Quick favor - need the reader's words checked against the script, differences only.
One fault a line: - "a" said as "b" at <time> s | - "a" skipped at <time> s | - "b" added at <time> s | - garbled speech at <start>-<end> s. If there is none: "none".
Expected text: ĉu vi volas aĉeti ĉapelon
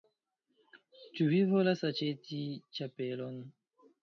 none